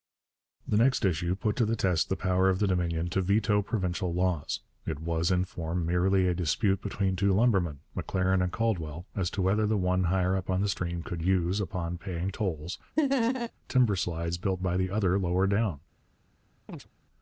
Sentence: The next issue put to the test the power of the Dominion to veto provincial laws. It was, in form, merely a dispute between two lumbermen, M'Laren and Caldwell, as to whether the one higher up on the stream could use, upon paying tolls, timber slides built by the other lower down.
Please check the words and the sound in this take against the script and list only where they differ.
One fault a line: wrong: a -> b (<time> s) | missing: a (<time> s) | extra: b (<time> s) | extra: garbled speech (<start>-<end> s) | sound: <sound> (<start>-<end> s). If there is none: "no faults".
sound: laugh (13.0-13.5 s)
sound: chirp (16.7-16.9 s)